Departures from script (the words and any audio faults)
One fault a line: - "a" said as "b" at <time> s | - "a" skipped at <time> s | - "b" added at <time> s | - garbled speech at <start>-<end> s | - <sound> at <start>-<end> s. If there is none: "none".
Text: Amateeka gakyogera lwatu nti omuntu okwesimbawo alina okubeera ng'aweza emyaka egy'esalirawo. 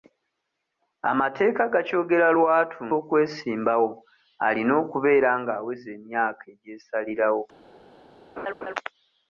- "nti omuntu" skipped at 2.8 s
- laugh at 8.4-8.7 s